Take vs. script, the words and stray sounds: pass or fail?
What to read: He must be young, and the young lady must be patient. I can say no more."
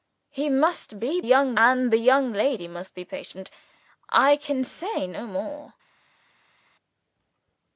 pass